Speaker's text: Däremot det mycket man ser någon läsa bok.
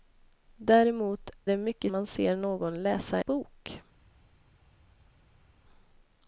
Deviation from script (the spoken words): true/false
false